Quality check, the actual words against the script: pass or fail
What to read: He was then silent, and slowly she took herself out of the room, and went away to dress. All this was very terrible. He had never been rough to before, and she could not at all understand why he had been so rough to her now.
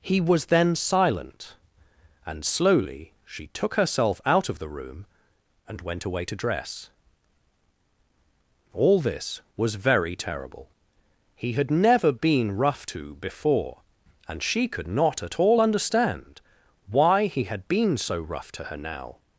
pass